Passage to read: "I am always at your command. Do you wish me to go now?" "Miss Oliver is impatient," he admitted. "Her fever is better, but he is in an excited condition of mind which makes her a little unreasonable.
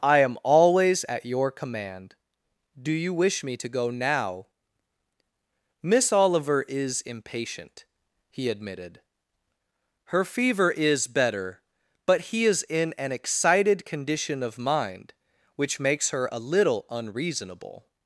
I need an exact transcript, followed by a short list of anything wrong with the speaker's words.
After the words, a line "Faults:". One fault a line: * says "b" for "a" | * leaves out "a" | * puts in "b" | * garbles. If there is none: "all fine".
"I am always at your command. Do you wish me to go now?" "Miss Oliver is impatient," he admitted. "Her fever is better, but he is in an excited condition of mind which makes her a little unreasonable.
Faults:
all fine